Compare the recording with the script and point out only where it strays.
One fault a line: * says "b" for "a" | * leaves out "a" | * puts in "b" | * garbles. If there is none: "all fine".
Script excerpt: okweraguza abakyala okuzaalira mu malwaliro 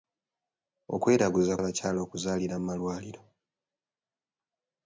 all fine